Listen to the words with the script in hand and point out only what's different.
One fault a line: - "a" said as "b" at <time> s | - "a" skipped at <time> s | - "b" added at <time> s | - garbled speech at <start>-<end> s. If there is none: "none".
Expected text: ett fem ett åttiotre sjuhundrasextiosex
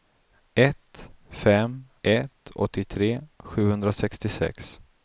none